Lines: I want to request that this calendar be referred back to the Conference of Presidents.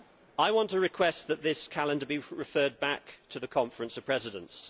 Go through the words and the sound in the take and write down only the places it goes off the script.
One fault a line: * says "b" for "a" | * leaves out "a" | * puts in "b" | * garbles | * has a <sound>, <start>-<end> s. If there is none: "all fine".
all fine